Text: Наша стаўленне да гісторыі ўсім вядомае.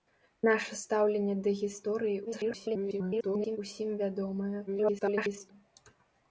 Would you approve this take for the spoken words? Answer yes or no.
no